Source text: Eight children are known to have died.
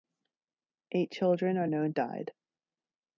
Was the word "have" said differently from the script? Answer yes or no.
yes